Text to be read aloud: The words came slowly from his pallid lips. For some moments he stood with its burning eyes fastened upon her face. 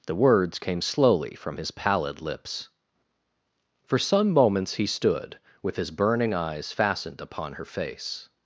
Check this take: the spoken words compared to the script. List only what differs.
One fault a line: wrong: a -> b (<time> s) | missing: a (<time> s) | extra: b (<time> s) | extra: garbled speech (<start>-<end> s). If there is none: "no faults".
wrong: its -> his (5.8 s)